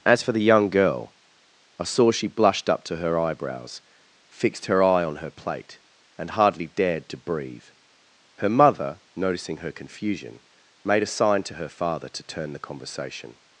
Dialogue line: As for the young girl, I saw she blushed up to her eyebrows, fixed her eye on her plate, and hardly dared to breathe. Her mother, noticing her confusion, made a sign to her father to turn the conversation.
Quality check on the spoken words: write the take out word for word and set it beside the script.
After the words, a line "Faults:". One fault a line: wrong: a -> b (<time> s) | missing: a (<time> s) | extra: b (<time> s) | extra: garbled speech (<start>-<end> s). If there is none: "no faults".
As for the young girl, I saw she blushed up to her eyebrows, fixed her eye on her plate, and hardly dared to breathe. Her mother, noticing her confusion, made a sign to her father to turn the conversation.
Faults:
no faults